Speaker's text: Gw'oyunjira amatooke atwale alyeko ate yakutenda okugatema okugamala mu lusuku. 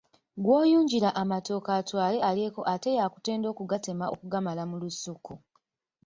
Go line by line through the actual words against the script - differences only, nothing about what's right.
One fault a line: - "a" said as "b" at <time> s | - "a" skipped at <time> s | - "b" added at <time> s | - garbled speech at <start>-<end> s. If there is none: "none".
none